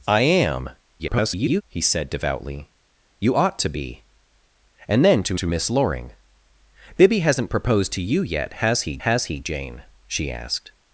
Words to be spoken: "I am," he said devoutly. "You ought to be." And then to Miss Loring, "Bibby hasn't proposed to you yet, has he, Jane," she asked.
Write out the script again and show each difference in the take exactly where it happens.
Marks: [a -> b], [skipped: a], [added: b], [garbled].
"I am," [garbled] he said devoutly. "You ought to be." And then to [added: to] Miss Loring, "Bibby hasn't proposed to you yet, has he, [added: has he] Jane," she asked.